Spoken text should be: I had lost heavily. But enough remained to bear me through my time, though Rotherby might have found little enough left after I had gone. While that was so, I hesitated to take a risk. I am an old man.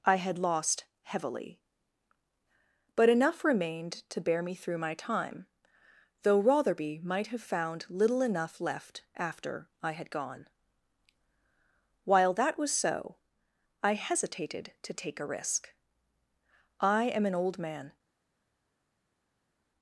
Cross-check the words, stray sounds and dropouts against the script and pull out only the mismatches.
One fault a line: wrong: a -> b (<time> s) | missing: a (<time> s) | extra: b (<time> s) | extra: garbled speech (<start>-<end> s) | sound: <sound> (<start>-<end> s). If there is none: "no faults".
no faults